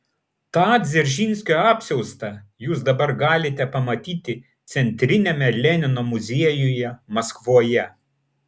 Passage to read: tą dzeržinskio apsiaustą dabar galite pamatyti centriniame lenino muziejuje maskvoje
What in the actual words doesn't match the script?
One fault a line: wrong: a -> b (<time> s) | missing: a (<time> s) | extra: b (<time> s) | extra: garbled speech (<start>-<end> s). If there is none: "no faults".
extra: jūs (2.7 s)